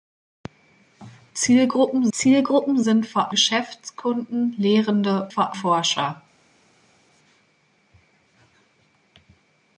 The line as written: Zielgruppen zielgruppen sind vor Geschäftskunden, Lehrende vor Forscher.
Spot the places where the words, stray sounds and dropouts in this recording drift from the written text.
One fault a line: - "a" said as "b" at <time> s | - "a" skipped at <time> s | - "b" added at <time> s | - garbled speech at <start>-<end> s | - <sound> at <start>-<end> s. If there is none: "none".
none